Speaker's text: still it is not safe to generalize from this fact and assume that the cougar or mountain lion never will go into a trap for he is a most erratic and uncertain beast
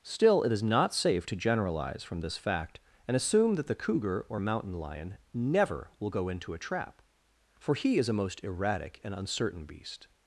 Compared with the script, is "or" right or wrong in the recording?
right